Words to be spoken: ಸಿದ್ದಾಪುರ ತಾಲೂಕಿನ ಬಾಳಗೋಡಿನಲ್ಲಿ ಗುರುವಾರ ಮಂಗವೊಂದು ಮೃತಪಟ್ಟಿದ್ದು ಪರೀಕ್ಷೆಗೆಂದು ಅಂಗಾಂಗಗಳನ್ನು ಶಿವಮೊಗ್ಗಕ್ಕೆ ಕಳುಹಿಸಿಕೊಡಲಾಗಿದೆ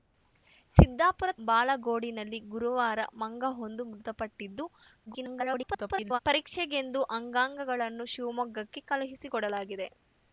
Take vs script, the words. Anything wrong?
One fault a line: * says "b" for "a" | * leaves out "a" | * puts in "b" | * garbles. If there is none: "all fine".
* leaves out "ತಾಲೂಕಿನ"
* garbles